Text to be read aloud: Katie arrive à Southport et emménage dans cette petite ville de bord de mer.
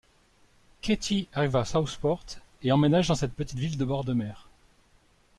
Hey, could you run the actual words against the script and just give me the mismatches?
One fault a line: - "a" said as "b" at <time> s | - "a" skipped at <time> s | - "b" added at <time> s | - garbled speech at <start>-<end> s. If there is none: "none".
none